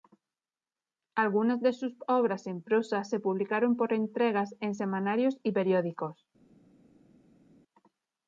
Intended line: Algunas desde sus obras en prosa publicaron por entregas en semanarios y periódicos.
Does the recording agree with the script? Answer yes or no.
no